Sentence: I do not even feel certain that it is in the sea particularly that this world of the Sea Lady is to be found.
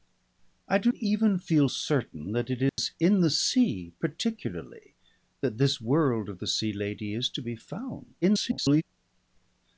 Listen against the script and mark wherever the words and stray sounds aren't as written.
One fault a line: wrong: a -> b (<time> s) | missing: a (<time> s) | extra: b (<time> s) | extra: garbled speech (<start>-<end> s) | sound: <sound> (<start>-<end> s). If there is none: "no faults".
missing: not (0.9 s)
sound: dropout (2.7-2.8 s)
extra: garbled speech (8.2-8.8 s)